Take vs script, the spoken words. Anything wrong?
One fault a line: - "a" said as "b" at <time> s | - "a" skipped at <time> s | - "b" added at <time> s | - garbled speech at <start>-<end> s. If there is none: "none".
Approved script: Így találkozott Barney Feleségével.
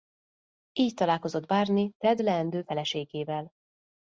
- "Ted leendő" added at 2.0 s